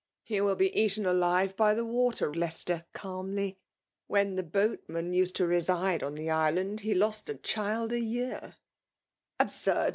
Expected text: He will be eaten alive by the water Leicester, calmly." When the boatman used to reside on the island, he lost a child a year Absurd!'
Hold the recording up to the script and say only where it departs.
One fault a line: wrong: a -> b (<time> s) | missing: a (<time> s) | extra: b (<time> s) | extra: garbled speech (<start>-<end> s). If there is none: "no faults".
no faults